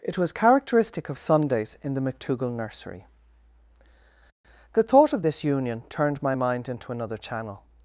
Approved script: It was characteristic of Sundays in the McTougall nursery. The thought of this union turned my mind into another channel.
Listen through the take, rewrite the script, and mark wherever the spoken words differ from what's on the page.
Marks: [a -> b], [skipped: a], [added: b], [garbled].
It was characteristic of Sundays in the McTougall nursery. The thought of this union turned my mind into another channel.